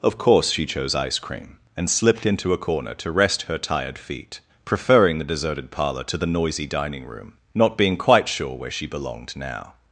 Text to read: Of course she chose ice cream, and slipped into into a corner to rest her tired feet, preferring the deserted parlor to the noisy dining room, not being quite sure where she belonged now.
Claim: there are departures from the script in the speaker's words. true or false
true